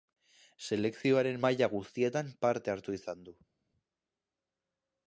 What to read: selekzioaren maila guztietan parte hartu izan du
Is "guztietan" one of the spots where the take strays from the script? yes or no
no